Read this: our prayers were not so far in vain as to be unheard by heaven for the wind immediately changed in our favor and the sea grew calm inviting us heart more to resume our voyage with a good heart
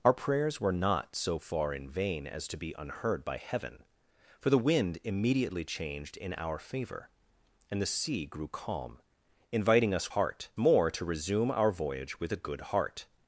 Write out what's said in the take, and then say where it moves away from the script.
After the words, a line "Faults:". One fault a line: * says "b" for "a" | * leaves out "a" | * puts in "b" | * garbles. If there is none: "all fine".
our prayers were not so far in vain as to be unheard by heaven for the wind immediately changed in our favor and the sea grew calm inviting us heart more to resume our voyage with a good heart
Faults:
all fine